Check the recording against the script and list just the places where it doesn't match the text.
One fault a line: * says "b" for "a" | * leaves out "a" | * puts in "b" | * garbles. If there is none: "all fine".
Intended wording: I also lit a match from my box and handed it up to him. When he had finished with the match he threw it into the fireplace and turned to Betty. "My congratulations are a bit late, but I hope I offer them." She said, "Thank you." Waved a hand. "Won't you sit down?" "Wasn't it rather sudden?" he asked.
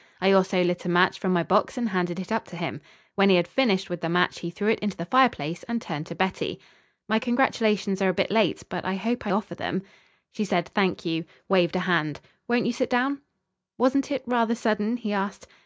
all fine